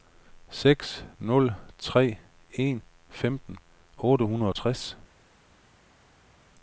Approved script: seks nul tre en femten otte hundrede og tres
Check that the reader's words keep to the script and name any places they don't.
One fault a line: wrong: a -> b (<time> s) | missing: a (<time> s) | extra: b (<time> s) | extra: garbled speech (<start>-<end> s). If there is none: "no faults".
no faults